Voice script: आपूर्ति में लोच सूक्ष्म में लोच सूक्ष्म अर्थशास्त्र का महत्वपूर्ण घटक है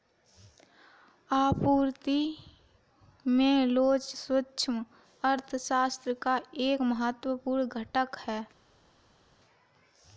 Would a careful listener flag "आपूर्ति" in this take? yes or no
no